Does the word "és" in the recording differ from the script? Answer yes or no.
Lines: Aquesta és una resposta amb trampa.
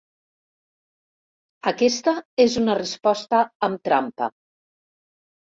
no